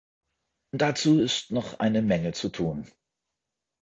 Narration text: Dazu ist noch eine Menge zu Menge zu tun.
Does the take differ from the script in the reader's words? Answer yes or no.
yes